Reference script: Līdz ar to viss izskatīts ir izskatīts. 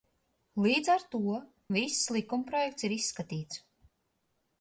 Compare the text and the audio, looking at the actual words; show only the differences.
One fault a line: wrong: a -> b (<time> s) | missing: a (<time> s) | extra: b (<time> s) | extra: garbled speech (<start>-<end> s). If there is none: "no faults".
wrong: izskatīts -> likumprojekts (2.2 s)